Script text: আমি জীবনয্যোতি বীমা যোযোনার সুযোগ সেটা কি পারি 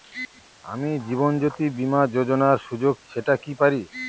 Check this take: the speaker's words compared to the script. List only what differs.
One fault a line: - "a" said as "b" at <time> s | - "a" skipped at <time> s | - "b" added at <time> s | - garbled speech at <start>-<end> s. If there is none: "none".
none